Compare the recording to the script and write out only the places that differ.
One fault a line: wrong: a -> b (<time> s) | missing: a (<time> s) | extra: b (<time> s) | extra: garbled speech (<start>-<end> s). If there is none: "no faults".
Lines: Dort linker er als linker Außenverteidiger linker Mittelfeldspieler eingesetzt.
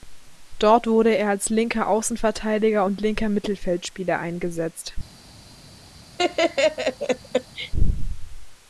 wrong: linker -> wurde (0.9 s)
extra: und (2.8 s)